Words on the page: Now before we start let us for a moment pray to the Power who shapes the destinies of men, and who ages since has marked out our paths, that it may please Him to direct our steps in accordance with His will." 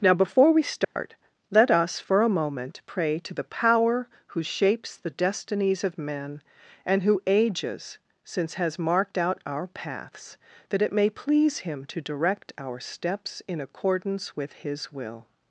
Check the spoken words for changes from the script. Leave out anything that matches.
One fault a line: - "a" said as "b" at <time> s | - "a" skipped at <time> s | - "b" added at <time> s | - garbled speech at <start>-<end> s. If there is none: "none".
none